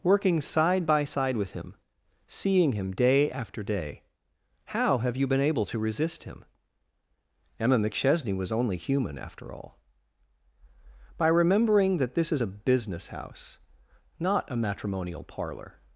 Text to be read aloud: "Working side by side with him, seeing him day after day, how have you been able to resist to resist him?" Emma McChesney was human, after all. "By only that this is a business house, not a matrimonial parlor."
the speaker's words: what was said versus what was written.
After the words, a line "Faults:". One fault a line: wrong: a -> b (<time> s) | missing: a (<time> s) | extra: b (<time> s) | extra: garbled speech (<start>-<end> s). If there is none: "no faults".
"Working side by side with him, seeing him day after day, how have you been able to resist him?" Emma McChesney was only human, after all. "By remembering that this is a business house, not a matrimonial parlor."
Faults:
missing: to resist (6.2 s)
extra: only (8.5 s)
wrong: only -> remembering (11.3 s)